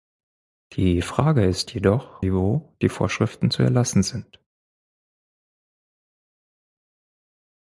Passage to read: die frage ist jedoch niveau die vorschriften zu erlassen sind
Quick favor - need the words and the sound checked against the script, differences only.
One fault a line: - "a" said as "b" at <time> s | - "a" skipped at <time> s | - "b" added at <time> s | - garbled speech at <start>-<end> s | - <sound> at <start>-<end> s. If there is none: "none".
none